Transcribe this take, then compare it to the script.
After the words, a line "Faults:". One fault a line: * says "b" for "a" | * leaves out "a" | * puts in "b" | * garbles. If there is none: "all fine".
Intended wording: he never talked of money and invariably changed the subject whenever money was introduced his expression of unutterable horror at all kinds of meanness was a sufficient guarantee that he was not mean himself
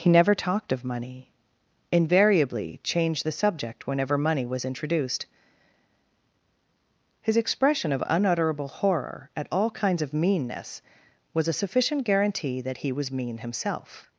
he never talked of money invariably changed the subject whenever money was introduced his expression of unutterable horror at all kinds of meanness was a sufficient guarantee that he was mean himself
Faults:
* leaves out "and"
* leaves out "not"